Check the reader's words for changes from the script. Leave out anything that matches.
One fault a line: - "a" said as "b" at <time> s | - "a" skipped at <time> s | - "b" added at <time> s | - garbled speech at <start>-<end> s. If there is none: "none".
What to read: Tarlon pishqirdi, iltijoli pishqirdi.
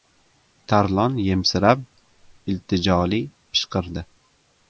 - "pishqirdi" said as "yemsirab" at 1.2 s